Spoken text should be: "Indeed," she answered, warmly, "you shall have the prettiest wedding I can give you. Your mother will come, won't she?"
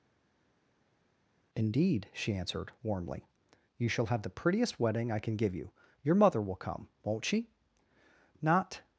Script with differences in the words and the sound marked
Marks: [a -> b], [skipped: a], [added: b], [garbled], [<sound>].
"Indeed," she answered, warmly, "you shall have the prettiest wedding I can give you. Your mother will come, won't she?" [added: Not]